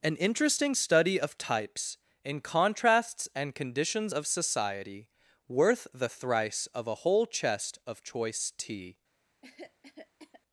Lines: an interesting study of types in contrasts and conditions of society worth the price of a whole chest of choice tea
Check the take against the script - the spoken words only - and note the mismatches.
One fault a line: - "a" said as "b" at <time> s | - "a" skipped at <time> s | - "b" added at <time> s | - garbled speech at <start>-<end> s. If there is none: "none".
- "price" said as "thrice" at 6.1 s